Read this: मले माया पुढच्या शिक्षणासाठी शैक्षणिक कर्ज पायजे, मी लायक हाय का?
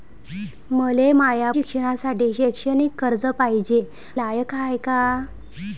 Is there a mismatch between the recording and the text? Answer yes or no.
yes